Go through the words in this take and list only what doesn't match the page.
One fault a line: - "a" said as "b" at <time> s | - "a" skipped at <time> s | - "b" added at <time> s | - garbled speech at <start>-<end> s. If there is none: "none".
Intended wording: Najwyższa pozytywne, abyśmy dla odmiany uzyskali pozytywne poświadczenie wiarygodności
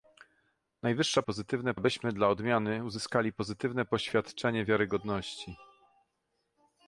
none